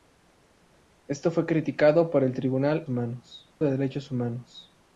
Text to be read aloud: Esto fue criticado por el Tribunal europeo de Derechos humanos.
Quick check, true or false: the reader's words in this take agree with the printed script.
false